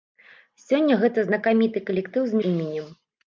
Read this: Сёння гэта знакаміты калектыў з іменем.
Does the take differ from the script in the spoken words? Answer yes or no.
no